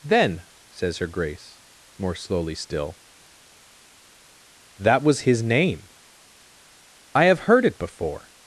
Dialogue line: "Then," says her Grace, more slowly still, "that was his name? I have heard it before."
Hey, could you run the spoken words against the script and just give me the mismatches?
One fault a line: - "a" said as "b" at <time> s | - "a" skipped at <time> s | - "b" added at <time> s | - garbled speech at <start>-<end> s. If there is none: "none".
none